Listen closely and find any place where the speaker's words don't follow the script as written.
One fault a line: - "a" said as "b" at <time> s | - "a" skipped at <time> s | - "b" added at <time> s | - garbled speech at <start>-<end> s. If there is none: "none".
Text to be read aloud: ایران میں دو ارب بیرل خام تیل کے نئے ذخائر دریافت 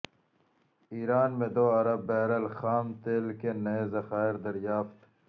none